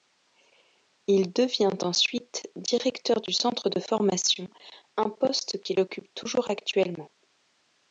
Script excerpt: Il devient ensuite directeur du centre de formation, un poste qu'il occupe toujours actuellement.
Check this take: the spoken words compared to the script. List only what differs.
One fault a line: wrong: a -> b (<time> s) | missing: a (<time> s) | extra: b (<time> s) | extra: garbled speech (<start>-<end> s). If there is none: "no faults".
no faults